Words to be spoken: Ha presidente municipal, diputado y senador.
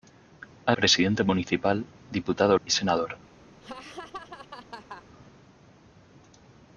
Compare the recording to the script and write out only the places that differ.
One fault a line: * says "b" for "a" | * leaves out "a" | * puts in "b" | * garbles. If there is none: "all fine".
all fine